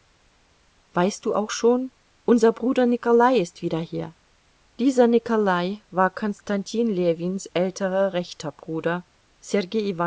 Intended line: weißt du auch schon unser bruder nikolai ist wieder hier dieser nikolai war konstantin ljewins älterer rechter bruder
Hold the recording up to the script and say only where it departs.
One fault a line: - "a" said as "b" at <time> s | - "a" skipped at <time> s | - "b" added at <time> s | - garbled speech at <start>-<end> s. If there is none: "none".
none